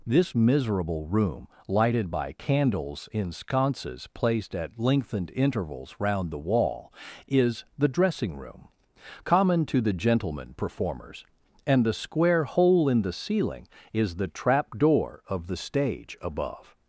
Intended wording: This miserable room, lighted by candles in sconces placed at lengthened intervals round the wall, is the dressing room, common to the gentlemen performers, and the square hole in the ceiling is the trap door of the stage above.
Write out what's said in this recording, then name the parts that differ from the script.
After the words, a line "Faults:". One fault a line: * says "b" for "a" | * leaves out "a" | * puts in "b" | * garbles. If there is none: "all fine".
This miserable room, lighted by candles in sconces placed at lengthened intervals round the wall, is the dressing room, common to the gentlemen performers, and the square hole in the ceiling is the trap door of the stage above.
Faults:
all fine